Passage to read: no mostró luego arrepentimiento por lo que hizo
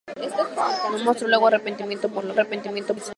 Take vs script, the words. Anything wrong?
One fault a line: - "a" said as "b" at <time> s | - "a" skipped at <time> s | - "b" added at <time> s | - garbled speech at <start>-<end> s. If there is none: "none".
- "que" said as "arrepentimiento" at 2.3 s